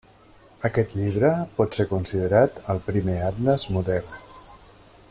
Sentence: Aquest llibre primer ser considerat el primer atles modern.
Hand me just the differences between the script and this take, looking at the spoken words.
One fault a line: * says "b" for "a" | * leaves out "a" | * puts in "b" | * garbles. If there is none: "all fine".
* says "pot" for "primer"